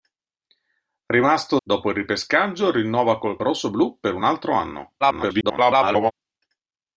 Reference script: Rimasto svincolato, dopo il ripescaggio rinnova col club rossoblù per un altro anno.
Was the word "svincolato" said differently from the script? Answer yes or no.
yes